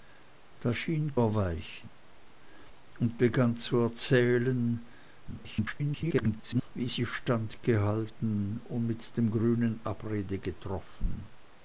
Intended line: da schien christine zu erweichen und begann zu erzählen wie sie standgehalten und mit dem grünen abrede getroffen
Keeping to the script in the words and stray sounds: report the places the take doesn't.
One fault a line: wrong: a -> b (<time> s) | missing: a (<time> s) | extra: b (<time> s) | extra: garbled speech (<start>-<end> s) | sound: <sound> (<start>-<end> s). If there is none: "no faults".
missing: christine zu (1.2 s)
extra: garbled speech (5.3-6.7 s)